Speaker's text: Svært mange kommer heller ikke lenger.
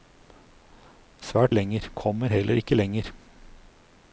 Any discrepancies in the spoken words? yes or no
yes